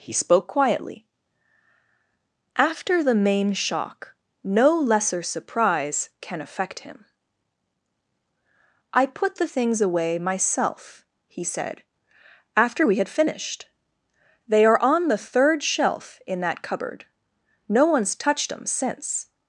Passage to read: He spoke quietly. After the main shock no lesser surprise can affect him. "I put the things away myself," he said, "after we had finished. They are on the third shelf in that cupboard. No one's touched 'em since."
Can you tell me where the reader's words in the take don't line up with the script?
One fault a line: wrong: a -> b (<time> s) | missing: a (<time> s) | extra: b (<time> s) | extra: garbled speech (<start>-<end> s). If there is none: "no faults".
no faults